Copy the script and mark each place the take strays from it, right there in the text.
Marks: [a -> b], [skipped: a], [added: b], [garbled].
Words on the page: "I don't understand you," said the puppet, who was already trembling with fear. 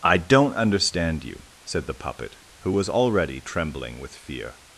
"I don't understand you," said the puppet, who was already trembling with fear.